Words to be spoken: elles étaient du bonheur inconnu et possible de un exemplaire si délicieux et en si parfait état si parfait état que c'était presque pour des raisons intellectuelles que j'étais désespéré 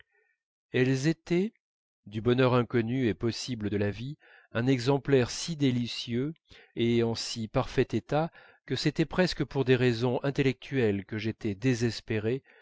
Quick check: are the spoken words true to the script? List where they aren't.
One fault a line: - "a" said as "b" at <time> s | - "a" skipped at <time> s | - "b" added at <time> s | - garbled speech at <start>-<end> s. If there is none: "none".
- "la vie" added at 3.8 s
- "si parfait état" skipped at 8.3 s